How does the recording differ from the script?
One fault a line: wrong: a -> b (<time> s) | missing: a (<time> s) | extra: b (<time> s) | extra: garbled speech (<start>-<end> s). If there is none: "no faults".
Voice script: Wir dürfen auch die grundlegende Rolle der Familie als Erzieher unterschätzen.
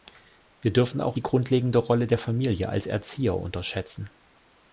no faults